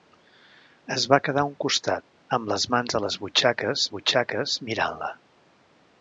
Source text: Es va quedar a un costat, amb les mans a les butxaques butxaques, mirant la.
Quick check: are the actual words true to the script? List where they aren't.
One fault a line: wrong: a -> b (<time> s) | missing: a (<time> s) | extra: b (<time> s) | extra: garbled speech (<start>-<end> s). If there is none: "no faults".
no faults